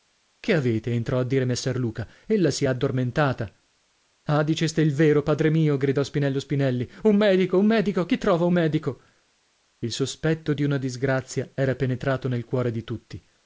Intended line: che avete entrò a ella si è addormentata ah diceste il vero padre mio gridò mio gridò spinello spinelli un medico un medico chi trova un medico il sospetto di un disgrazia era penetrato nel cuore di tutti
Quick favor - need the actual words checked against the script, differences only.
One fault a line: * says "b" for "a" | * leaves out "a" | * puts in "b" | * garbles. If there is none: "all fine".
* puts in "dire messer luca"
* leaves out "mio gridò"
* says "una" for "un"